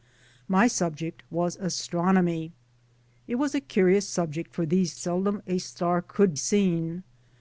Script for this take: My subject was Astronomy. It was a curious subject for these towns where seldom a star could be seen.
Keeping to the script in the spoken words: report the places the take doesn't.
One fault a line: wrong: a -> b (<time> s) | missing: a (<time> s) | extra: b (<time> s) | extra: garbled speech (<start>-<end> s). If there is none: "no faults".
missing: towns where (5.0 s)
missing: be (6.4 s)